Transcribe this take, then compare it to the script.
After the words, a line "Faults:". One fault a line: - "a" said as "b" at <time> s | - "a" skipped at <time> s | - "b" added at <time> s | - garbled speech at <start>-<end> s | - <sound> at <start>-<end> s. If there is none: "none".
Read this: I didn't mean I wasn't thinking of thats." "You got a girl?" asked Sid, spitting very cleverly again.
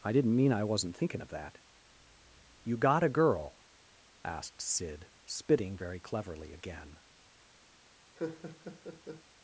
I didn't mean I wasn't thinking of that." "You got a girl?" asked Sid, spitting very cleverly again.
Faults:
- "thats" said as "that" at 1.3 s
- laugh at 8.2-9.2 s